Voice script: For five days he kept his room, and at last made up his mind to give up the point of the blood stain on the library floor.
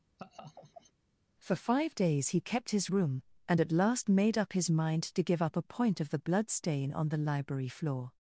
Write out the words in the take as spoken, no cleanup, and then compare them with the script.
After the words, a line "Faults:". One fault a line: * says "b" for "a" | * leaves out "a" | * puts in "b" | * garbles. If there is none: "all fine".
For five days he kept his room, and at last made up his mind to give up a point of the blood stain on the library floor.
Faults:
* says "a" for "the"